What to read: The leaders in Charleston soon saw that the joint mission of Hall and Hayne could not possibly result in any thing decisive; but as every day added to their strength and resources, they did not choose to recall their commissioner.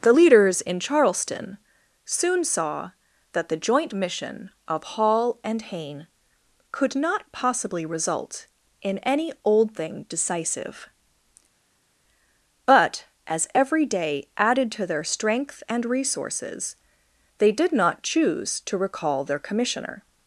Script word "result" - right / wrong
right